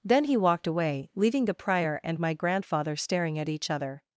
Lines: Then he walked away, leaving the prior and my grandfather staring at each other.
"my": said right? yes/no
yes